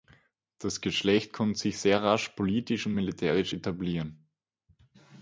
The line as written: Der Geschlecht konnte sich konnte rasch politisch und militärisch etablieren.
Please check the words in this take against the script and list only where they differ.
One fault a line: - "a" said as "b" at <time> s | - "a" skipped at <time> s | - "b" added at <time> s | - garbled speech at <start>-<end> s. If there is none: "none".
- "Der" said as "Das" at 0.6 s
- "konnte" said as "sehr" at 1.8 s